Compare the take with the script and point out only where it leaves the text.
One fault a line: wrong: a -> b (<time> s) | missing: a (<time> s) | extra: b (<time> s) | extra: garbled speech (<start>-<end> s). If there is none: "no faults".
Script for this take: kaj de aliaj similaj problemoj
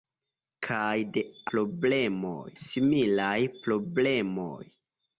wrong: aliaj -> problemoj (1.6 s)